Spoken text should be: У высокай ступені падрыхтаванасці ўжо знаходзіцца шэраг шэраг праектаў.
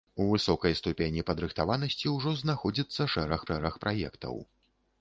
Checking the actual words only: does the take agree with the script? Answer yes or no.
yes